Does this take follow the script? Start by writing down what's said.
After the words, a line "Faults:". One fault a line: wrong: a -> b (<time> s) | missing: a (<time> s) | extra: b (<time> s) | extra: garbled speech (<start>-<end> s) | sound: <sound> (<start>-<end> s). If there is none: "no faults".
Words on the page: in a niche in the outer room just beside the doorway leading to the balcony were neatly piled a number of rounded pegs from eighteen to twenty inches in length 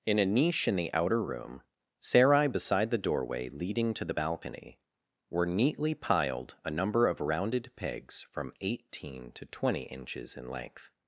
in a niche in the outer room sarai beside the doorway leading to the balcony were neatly piled a number of rounded pegs from eighteen to twenty inches in length
Faults:
wrong: just -> sarai (2.0 s)